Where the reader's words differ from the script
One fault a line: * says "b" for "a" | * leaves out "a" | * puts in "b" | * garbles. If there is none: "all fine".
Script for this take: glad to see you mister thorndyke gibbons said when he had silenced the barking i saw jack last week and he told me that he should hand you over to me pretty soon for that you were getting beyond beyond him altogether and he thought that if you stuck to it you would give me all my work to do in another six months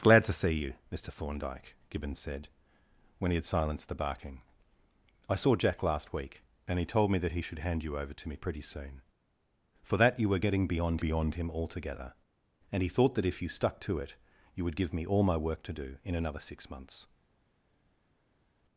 all fine